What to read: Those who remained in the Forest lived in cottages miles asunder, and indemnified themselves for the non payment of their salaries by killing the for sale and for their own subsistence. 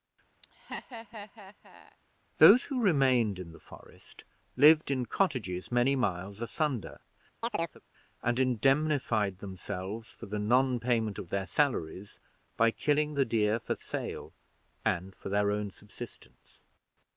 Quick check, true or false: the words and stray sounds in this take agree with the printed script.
false